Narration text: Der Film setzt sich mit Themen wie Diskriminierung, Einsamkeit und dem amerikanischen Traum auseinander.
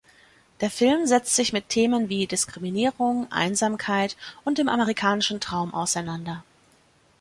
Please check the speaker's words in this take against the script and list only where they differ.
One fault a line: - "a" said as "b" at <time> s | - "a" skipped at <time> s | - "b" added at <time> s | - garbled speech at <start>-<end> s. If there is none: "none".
none